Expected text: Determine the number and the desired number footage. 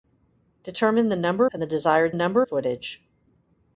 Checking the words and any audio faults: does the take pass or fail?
pass